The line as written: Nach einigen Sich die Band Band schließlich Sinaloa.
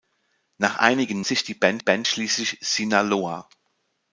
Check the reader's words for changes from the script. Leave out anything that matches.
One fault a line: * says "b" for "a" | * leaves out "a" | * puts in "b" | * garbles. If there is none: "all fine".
all fine